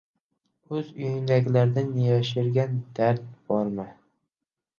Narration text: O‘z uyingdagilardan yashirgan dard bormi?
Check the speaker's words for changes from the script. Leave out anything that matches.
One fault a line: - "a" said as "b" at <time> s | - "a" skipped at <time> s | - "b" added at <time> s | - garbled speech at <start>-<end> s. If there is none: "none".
none